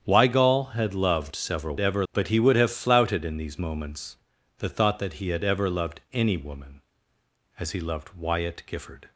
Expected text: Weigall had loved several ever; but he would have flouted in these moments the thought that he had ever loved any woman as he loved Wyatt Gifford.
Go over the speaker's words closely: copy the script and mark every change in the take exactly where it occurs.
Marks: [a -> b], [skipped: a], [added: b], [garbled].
Weigall had loved several ever; but he would have flouted in these moments the thought that he had ever loved any woman as he loved Wyatt Gifford.